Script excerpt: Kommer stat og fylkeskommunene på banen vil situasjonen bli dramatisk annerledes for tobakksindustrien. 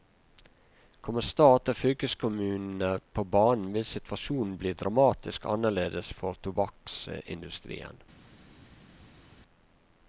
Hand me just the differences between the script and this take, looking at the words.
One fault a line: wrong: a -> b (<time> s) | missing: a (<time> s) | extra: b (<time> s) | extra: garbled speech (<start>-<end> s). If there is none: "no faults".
no faults